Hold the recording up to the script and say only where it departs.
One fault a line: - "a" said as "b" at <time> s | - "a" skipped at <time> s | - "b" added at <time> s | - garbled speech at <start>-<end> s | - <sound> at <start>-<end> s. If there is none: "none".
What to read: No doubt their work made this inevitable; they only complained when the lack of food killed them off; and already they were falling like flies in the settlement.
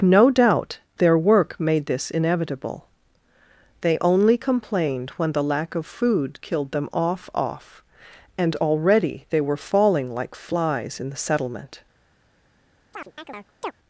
- "off" added at 7.3 s
- chirp at 12.9-13.7 s